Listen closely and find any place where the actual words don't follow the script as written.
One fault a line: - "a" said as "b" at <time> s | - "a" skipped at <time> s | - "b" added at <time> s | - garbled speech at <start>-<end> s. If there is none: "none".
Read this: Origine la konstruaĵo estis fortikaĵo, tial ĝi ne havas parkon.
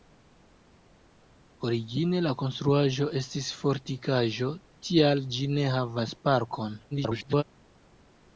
- garbled speech at 6.9-7.4 s